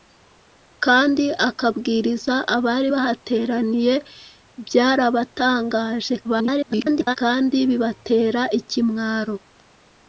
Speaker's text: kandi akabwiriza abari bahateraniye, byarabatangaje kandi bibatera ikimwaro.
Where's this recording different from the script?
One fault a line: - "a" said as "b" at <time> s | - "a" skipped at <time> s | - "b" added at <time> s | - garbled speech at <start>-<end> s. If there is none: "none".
- garbled speech at 6.2-7.2 s